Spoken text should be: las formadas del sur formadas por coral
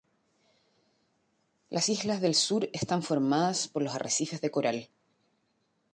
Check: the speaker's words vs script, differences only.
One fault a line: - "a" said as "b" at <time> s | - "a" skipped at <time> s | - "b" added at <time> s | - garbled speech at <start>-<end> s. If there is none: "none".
- "formadas" said as "islas" at 1.9 s
- "están" added at 2.7 s
- "los arrecifes de" added at 3.8 s